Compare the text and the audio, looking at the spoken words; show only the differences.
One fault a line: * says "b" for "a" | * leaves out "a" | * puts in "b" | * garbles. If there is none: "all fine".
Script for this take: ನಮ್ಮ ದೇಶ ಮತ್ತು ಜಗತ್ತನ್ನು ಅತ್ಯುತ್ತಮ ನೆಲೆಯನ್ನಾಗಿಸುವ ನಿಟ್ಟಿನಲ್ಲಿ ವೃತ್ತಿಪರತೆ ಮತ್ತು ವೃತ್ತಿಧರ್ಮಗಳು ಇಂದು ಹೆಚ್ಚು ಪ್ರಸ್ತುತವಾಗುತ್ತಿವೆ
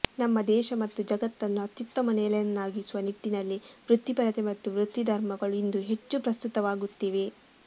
all fine